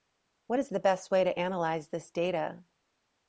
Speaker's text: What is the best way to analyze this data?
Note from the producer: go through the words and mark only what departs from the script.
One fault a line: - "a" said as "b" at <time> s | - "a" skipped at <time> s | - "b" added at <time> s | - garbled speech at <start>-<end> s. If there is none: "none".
none